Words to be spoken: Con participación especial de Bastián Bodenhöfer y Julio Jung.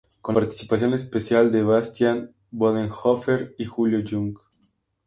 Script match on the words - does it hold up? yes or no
yes